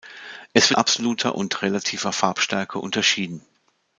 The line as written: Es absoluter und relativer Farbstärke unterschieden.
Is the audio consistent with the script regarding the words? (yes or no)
yes